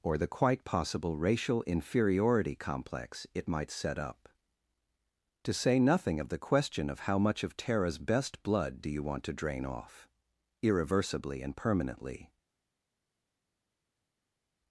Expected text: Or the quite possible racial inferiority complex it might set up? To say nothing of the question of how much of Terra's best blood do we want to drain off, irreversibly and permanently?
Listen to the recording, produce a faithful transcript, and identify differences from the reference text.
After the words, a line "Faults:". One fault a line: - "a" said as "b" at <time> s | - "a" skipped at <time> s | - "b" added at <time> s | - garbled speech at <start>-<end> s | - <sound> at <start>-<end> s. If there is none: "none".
Or the quite possible racial inferiority complex it might set up? To say nothing of the question of how much of Terra's best blood do you want to drain off, irreversibly and permanently?
Faults:
- "we" said as "you" at 8.9 s